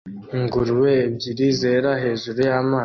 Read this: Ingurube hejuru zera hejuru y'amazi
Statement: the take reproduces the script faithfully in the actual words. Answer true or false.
false